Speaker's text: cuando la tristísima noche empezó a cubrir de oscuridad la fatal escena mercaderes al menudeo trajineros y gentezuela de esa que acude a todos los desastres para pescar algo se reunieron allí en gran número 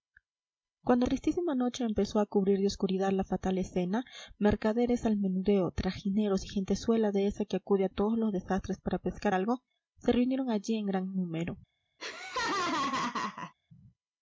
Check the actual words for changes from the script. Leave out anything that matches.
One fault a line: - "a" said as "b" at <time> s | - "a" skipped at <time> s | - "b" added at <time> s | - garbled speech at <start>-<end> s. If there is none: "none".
- "la" skipped at 1.1 s